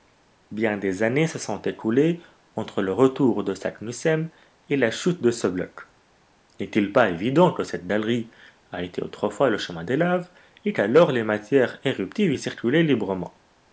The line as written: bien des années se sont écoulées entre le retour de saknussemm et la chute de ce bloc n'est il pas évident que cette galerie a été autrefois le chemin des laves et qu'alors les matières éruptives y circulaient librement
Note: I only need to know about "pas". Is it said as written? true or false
true